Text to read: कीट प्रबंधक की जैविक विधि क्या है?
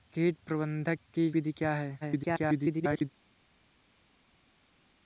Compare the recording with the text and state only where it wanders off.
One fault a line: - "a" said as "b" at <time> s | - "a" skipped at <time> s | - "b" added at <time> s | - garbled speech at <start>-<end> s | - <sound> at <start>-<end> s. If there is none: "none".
- "जैविक" skipped at 1.3 s
- garbled speech at 2.0-3.1 s